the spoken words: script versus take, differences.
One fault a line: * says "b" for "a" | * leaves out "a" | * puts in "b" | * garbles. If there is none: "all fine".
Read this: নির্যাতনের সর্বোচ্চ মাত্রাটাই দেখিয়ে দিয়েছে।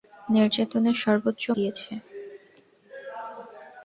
* leaves out "মাত্রাটাই দেখিয়ে"